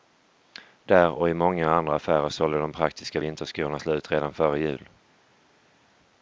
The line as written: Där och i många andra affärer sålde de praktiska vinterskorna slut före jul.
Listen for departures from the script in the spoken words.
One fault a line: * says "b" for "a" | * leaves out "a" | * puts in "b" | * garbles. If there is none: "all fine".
* puts in "redan"